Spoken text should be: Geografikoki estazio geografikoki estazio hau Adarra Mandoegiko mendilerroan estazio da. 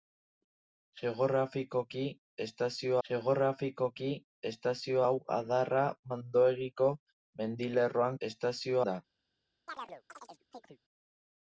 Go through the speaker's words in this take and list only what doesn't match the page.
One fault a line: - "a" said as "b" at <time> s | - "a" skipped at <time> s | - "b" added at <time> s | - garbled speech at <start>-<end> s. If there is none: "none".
none